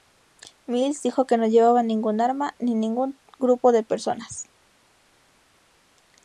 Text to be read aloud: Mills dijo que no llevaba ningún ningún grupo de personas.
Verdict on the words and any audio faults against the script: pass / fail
fail